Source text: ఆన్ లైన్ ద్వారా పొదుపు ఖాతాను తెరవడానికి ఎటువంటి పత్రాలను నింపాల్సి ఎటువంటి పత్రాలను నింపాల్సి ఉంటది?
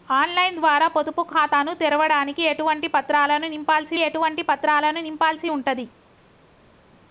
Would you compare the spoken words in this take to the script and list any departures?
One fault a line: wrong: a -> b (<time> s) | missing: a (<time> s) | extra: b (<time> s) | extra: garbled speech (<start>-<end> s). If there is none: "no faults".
no faults